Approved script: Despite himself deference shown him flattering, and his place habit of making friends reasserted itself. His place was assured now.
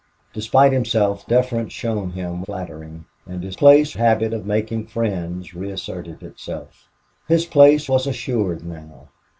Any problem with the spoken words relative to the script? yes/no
no